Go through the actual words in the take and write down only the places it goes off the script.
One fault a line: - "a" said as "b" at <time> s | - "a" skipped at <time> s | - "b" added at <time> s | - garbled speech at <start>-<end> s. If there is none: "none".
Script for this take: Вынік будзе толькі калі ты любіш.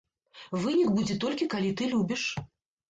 none